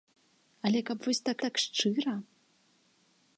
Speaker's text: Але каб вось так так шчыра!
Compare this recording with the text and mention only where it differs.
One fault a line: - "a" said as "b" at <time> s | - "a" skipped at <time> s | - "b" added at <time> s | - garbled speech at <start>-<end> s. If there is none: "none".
none